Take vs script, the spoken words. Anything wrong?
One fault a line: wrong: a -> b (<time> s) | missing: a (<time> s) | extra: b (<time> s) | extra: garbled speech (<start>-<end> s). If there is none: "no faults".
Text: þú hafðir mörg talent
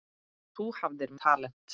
missing: mörg (1.1 s)